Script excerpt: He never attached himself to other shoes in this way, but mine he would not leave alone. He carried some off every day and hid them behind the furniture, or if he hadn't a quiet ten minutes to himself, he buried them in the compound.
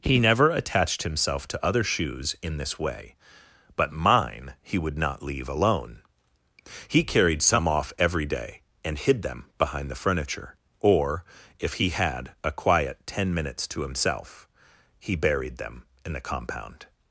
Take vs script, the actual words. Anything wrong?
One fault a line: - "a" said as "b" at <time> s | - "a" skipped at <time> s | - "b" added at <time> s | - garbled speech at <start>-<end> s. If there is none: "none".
- "hadn't" said as "had" at 11.9 s